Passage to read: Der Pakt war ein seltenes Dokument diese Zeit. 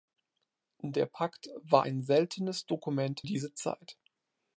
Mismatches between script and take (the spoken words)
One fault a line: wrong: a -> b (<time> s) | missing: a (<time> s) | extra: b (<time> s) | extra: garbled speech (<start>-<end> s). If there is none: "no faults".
no faults